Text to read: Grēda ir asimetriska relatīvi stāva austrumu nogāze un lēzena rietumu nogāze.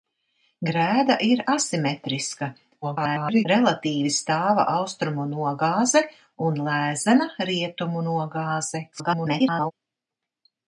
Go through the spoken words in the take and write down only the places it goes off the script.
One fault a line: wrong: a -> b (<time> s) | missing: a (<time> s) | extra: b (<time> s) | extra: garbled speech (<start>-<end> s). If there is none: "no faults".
extra: garbled speech (2.8-3.4 s)
extra: garbled speech (8.9-9.7 s)